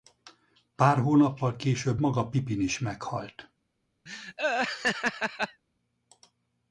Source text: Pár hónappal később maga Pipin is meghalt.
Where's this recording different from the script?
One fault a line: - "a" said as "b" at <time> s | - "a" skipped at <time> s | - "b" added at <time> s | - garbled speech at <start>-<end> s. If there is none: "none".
none